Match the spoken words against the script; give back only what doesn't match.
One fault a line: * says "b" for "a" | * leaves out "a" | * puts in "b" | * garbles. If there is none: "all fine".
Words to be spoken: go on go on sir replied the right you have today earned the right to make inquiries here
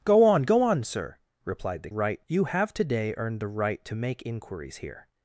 all fine